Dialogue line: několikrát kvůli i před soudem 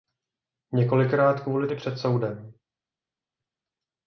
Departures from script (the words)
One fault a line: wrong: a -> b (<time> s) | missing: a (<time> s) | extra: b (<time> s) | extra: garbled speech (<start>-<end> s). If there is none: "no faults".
no faults